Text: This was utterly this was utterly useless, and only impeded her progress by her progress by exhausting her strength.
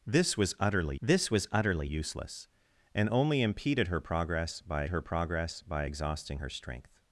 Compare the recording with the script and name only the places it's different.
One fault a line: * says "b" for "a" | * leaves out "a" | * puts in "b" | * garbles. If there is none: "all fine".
all fine